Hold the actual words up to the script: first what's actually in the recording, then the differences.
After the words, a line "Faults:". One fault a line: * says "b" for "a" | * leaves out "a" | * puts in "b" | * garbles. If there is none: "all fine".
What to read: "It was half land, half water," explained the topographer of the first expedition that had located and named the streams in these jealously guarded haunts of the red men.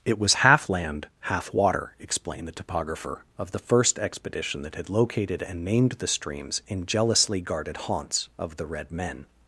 "It was half land, half water," explained the topographer of the first expedition that had located and named the streams in jealously guarded haunts of the red men.
Faults:
* leaves out "these"